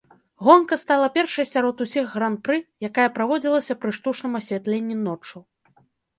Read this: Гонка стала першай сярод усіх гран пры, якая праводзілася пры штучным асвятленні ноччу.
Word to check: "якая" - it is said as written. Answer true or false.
true